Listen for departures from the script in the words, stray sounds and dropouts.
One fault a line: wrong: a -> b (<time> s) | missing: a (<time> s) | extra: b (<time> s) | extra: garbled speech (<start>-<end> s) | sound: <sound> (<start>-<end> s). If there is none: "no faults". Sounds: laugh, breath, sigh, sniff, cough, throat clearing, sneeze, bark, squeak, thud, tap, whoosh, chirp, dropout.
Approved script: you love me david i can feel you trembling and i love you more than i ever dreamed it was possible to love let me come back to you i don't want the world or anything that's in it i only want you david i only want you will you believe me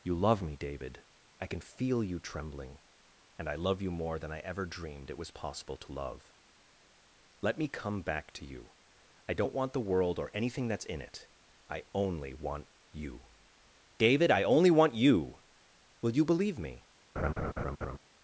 sound: laugh (17.2-18.0 s)